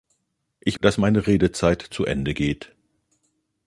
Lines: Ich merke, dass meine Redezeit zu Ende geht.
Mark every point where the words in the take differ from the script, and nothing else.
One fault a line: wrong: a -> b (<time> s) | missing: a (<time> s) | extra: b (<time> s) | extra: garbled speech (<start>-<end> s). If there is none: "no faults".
missing: merke (0.8 s)